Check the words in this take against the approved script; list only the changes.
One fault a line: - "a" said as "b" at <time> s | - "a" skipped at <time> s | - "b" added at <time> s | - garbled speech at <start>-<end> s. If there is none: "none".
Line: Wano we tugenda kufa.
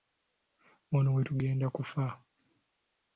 none